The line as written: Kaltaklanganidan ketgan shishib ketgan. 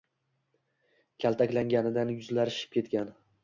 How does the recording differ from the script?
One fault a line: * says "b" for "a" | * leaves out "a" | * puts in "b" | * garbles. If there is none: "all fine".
* says "yuzlari" for "ketgan"